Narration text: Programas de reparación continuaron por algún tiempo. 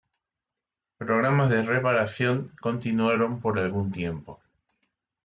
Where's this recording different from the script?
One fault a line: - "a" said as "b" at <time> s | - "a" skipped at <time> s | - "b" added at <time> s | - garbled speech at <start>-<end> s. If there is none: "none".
none